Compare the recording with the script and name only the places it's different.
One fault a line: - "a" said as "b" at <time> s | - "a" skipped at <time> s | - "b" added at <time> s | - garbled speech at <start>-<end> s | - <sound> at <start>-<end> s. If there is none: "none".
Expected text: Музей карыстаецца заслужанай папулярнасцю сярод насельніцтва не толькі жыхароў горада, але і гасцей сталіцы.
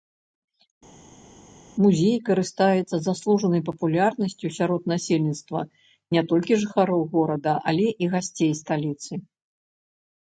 none